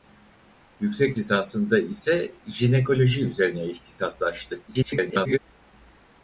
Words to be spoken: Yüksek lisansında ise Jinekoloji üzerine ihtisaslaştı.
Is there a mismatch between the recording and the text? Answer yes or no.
yes